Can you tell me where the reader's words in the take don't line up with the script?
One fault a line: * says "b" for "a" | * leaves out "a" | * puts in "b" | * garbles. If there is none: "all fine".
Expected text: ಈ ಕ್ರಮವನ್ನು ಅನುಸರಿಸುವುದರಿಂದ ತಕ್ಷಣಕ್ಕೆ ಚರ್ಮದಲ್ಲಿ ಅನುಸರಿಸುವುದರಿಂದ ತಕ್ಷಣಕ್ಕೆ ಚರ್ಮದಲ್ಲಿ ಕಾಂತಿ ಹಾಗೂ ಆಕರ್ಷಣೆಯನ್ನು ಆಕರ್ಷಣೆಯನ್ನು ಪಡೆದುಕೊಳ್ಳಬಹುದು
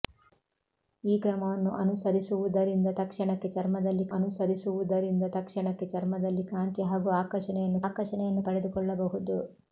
all fine